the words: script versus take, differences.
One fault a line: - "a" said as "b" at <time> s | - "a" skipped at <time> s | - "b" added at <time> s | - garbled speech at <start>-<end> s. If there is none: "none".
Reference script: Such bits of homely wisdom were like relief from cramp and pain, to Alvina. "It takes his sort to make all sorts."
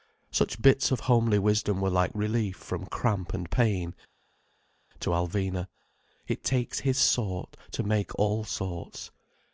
none